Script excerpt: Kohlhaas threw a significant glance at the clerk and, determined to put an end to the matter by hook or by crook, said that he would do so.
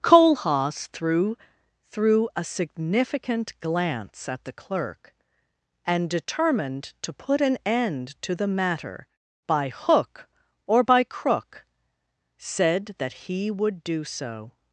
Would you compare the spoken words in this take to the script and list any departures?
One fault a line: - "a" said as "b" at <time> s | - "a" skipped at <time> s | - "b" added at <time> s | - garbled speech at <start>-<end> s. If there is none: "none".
- "threw" added at 1.9 s